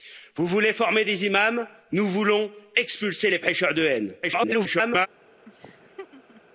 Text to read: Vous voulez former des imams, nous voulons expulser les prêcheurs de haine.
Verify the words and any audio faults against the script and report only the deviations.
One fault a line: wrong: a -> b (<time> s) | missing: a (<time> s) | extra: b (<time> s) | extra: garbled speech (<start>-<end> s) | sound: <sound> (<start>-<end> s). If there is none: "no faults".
extra: garbled speech (4.2-5.1 s)
sound: laugh (5.4-6.4 s)